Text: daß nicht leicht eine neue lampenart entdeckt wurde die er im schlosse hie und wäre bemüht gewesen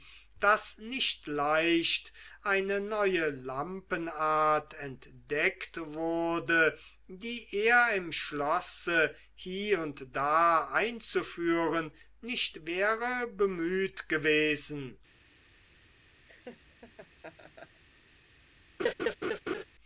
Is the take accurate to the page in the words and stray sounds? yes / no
no